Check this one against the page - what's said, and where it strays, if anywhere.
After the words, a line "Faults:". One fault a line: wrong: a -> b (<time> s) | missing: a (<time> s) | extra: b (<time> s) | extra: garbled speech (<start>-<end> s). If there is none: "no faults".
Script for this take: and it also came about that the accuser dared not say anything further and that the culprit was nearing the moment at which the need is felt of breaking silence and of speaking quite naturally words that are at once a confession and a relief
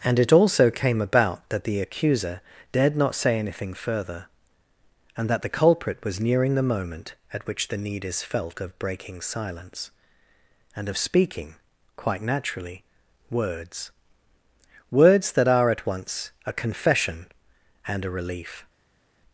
and it also came about that the accuser dared not say anything further and that the culprit was nearing the moment at which the need is felt of breaking silence and of speaking quite naturally words words that are at once a confession and a relief
Faults:
extra: words (14.9 s)